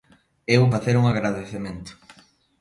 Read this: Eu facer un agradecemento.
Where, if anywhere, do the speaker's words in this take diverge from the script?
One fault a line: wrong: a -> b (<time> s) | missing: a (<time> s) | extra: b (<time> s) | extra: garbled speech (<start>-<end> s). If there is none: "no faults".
no faults